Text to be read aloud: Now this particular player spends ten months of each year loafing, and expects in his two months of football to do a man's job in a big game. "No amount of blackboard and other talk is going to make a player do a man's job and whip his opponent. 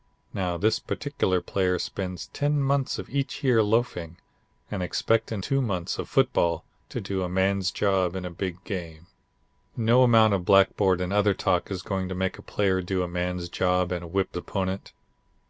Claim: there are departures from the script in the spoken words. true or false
true